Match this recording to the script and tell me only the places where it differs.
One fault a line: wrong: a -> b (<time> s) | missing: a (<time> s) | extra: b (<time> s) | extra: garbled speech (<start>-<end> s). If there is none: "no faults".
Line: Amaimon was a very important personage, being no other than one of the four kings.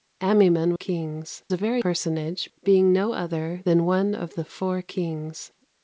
wrong: was -> kings (0.7 s)
missing: important (1.8 s)